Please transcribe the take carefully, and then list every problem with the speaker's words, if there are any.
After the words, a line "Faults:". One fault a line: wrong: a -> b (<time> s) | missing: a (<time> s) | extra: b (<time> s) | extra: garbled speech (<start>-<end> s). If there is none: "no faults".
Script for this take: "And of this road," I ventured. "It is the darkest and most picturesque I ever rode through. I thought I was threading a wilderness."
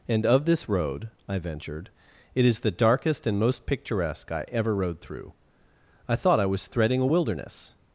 "And of this road," I ventured. "It is the darkest and most picturesque I ever rode through. I thought I was threading a wilderness."
Faults:
no faults